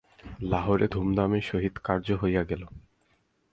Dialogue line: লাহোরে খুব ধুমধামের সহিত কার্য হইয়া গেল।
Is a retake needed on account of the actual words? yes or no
yes